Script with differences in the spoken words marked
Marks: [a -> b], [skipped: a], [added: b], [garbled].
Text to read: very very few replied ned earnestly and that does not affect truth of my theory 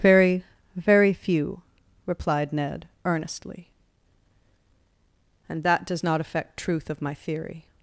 very very few replied ned earnestly and that does not affect truth of my theory